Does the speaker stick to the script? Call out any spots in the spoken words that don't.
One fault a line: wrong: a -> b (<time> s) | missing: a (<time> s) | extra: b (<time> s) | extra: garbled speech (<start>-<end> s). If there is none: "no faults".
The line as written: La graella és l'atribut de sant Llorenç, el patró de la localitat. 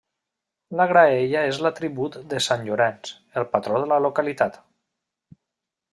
no faults